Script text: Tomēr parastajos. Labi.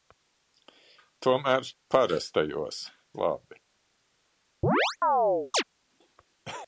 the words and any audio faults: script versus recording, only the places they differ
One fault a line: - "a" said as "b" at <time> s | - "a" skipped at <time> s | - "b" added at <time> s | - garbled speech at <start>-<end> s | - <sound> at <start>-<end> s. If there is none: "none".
- chirp at 4.6-5.6 s